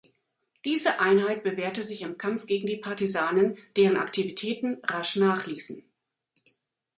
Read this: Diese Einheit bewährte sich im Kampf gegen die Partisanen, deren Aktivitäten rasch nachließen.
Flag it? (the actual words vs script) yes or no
no